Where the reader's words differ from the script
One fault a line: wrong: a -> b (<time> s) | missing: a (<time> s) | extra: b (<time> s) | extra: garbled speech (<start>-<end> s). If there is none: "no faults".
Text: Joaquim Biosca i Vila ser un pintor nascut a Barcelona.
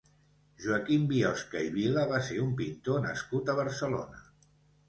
extra: va (2.1 s)